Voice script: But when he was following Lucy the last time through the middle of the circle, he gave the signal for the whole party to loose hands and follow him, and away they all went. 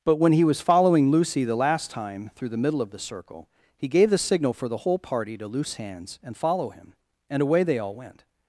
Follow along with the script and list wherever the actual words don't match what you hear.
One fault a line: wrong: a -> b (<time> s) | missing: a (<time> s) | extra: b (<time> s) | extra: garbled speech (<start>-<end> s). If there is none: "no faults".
no faults